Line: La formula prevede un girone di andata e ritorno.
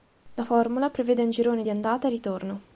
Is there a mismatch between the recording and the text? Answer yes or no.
no